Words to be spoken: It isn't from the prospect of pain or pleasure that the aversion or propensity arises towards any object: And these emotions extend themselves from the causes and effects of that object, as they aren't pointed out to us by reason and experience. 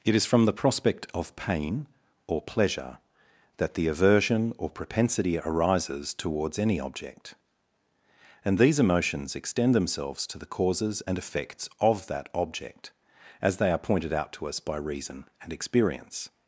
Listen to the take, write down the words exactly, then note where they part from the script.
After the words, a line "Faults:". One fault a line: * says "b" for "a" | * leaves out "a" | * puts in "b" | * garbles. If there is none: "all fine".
It is from the prospect of pain or pleasure that the aversion or propensity arises towards any object: And these emotions extend themselves to the causes and effects of that object, as they are pointed out to us by reason and experience.
Faults:
* says "is" for "isn't"
* says "to" for "from"
* says "are" for "aren't"